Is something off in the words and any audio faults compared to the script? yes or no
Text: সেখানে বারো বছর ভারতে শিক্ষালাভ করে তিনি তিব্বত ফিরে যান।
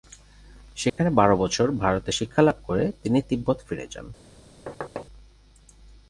yes